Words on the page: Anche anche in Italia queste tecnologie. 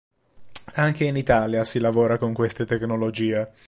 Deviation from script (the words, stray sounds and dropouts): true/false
true